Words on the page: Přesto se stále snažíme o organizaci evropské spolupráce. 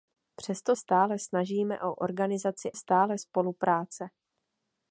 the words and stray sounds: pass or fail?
fail